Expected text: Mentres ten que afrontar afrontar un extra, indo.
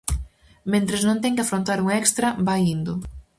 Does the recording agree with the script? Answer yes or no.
no